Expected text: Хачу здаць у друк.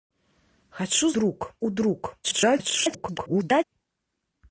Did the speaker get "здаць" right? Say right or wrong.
wrong